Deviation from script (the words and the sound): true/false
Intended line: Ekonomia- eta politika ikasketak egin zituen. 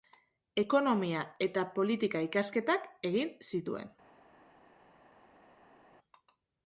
false